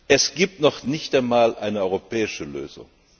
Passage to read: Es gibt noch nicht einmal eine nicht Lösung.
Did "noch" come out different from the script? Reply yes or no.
no